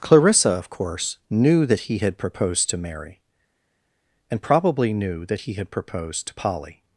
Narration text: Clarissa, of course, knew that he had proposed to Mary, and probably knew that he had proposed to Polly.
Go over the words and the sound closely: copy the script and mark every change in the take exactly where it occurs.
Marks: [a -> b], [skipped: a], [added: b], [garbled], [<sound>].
Clarissa, of course, knew that he had proposed to Mary, and probably knew that he had proposed to Polly.